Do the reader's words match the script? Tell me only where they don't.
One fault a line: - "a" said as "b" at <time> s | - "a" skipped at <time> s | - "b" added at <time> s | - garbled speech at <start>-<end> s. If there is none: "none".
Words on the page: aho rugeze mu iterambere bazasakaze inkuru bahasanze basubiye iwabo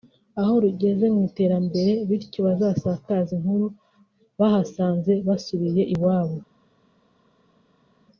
- "bityo" added at 2.1 s